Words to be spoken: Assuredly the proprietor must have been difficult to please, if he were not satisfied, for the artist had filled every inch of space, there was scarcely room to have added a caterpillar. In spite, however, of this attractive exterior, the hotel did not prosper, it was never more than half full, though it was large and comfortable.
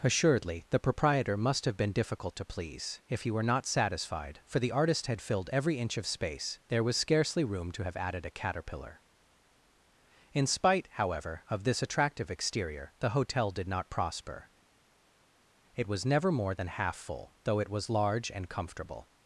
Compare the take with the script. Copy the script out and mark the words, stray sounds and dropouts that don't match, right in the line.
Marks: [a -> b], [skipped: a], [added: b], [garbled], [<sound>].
Assuredly the proprietor must have been difficult to please, if he were not satisfied, for the artist had filled every inch of space, there was scarcely room to have added a caterpillar. In spite, however, of this attractive exterior, the hotel did not prosper, it was never more than half full, though it was large and comfortable.